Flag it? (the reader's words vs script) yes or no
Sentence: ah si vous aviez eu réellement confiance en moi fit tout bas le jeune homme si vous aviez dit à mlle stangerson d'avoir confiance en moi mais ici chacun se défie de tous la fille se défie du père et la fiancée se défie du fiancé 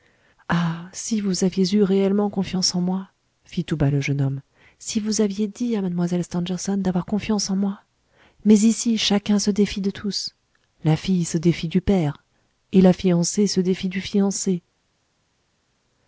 no